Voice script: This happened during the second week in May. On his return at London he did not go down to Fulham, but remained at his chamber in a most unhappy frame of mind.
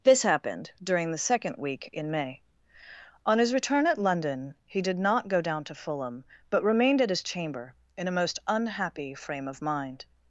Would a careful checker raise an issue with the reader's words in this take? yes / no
no